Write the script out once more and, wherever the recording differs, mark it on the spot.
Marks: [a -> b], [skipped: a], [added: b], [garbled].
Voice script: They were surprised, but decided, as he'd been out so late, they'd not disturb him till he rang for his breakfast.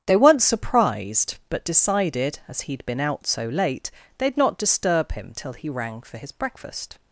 They [were -> weren't] surprised, but decided, as he'd been out so late, they'd not disturb him till he rang for his breakfast.